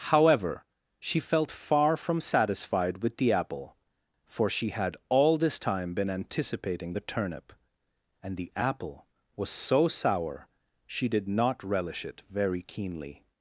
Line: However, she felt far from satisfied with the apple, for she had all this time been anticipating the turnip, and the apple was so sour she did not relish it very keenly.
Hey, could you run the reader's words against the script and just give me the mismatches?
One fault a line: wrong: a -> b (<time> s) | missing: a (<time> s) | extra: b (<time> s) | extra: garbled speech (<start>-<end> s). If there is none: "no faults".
no faults